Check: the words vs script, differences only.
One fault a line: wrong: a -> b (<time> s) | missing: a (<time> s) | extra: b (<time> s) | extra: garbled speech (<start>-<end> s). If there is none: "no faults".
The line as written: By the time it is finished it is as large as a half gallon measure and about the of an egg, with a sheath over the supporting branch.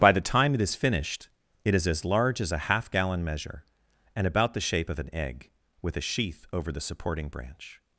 extra: shape (4.7 s)